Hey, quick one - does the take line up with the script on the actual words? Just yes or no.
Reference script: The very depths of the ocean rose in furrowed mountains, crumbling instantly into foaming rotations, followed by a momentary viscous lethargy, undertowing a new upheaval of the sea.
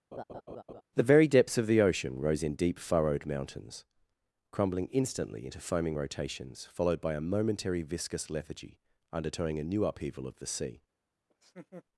no